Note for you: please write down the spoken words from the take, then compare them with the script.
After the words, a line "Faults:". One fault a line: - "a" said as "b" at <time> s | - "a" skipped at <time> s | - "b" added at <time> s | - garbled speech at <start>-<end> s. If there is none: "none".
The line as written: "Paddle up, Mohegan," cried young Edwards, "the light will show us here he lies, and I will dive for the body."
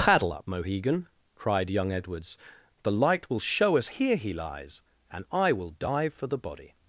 "Paddle up, Mohegan," cried young Edwards, "the light will show us here he lies, and I will dive for the body."
Faults:
none